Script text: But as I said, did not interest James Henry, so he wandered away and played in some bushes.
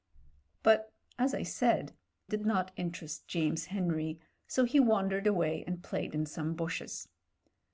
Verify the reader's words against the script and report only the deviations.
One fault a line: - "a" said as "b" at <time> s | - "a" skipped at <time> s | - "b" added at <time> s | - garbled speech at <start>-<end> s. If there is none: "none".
none